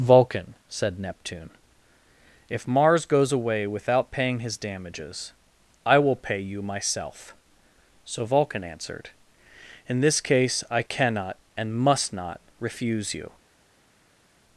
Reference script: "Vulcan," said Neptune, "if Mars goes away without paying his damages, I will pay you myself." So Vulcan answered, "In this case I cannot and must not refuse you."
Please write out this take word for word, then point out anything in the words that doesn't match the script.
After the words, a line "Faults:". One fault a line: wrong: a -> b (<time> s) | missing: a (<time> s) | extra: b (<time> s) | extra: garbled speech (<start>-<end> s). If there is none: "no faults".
"Vulcan," said Neptune, "if Mars goes away without paying his damages, I will pay you myself." So Vulcan answered, "In this case I cannot and must not refuse you."
Faults:
no faults